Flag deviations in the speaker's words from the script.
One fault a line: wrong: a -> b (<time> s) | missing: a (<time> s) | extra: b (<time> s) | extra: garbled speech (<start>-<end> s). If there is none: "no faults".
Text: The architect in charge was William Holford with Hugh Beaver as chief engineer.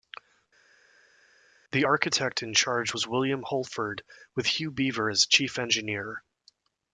no faults